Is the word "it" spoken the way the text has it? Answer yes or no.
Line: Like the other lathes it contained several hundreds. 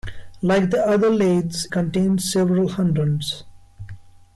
no